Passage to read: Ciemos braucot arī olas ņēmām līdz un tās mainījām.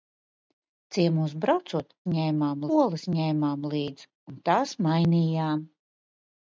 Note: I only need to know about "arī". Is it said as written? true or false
false